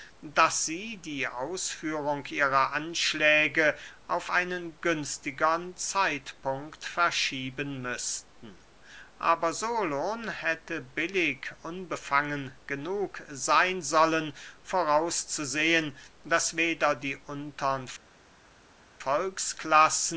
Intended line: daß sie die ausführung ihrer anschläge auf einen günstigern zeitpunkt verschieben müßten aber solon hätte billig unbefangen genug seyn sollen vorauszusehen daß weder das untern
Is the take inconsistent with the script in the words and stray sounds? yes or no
yes